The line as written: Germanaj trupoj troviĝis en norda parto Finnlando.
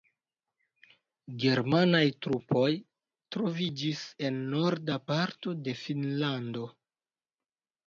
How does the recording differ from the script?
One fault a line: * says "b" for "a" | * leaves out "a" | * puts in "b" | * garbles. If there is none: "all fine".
* puts in "de"